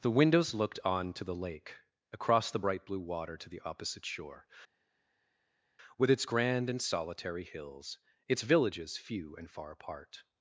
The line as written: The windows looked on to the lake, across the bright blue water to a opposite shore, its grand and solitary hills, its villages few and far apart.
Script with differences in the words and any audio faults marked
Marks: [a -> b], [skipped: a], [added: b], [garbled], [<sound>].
The windows looked on to the lake, across the bright blue water to [a -> the] opposite shore, [added: with] its grand and solitary hills, its villages few and far apart.